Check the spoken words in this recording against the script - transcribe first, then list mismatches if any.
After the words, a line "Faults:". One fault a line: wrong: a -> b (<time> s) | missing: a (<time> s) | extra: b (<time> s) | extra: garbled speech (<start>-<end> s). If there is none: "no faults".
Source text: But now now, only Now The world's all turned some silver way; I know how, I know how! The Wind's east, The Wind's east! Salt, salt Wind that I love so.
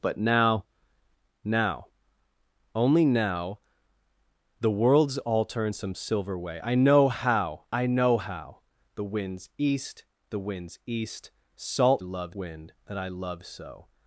But now now, only Now The world's all turned some silver way; I know how, I know how! The Wind's east, The Wind's east! Salt, love Wind that I love so.
Faults:
wrong: salt -> love (12.0 s)